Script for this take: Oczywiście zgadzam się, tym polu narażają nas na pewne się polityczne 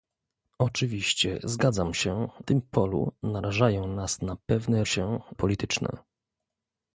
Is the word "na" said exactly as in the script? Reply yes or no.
yes